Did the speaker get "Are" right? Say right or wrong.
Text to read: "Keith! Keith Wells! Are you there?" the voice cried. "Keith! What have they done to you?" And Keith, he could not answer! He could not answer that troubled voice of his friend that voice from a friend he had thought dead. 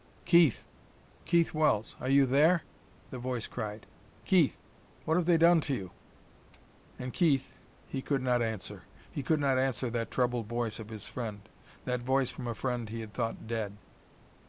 right